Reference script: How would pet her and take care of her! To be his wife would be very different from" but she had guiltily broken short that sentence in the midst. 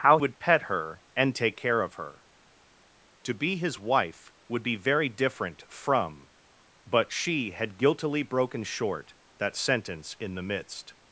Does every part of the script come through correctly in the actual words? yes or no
yes